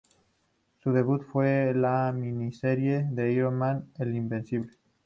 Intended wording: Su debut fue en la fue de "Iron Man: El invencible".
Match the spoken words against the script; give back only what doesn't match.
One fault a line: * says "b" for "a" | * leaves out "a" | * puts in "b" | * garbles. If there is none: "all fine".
* says "miniserie" for "fue"